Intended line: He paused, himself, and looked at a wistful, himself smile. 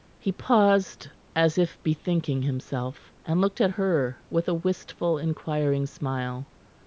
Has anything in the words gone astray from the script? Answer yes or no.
yes